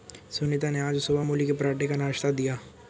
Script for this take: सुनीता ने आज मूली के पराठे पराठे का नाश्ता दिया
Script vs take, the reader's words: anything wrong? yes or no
yes